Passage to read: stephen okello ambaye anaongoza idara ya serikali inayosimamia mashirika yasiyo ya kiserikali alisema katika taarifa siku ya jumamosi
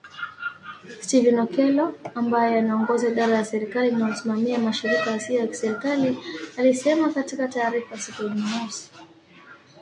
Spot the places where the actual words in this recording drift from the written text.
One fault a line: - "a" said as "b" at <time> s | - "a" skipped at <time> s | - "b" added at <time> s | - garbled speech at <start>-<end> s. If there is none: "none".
none